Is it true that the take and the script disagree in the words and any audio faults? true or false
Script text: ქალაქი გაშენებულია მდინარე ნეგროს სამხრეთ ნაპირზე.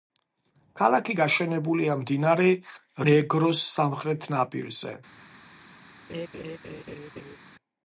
true